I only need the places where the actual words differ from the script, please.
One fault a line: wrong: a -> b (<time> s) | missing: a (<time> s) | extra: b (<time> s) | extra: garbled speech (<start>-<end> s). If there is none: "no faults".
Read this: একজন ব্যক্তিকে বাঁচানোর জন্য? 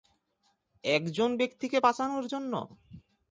no faults